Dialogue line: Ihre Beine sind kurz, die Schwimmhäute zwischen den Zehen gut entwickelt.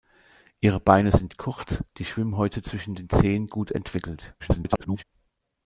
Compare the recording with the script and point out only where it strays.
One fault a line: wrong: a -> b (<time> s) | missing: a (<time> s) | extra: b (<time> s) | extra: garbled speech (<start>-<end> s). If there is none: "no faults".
extra: garbled speech (4.4-5.0 s)